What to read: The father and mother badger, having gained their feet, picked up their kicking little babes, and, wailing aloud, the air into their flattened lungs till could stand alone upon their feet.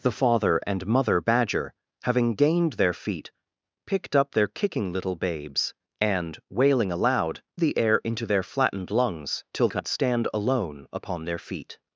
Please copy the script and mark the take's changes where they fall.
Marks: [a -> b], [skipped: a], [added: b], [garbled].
The father and mother badger, having gained their feet, picked up their kicking little babes, and, wailing aloud, the air into their flattened lungs till could stand alone upon their feet.